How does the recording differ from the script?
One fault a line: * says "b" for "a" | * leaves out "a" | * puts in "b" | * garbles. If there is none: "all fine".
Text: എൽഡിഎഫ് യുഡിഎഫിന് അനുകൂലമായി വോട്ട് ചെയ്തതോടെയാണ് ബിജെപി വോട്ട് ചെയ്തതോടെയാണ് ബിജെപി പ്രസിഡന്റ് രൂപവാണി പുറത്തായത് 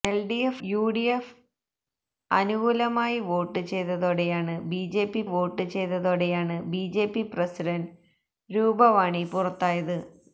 all fine